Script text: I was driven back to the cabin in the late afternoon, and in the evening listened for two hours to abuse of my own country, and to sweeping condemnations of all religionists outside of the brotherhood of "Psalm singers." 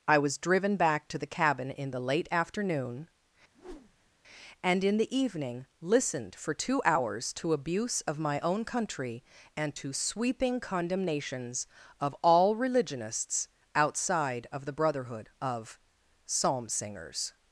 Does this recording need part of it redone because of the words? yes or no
no